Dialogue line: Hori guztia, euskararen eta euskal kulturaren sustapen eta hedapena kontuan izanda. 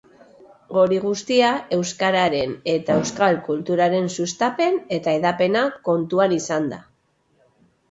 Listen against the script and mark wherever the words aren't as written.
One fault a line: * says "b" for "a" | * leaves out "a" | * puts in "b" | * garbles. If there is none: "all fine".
all fine